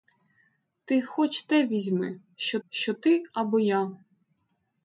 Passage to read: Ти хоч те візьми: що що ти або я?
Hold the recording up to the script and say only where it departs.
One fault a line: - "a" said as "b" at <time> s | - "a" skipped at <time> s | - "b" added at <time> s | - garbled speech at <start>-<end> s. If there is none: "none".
none